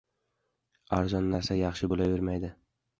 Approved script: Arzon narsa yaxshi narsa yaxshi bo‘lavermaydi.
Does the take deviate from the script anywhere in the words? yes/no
yes